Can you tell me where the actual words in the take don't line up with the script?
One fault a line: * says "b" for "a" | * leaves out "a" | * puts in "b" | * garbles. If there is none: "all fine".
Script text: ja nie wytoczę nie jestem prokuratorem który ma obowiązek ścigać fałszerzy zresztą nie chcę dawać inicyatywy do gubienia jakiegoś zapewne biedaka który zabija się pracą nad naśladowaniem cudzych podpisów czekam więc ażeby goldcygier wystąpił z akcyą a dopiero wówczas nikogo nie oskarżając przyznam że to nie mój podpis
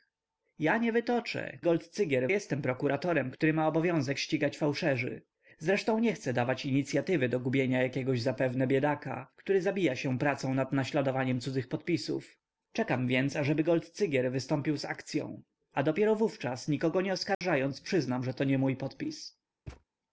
* says "goldcygier" for "nie"